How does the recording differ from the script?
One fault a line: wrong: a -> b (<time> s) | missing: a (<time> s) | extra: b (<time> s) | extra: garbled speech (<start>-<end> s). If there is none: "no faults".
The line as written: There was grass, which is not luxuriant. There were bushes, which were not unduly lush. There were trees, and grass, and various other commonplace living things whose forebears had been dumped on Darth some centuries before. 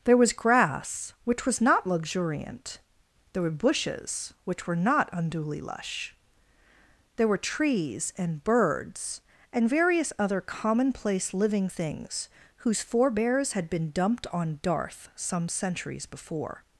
wrong: is -> was (1.4 s)
wrong: grass -> birds (8.4 s)